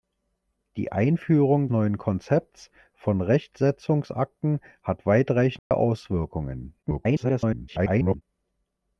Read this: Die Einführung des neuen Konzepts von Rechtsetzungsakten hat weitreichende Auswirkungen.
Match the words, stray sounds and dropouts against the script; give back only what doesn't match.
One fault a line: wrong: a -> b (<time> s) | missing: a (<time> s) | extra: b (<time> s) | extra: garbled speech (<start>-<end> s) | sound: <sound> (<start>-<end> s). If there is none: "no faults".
missing: des (1.7 s)
sound: dropout (5.6-5.7 s)
extra: garbled speech (6.8-8.2 s)